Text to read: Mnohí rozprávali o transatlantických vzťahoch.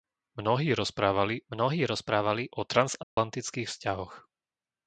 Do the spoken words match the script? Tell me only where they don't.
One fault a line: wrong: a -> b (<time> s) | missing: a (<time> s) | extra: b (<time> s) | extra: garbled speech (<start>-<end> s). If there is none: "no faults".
extra: mnohí rozprávali (1.5 s)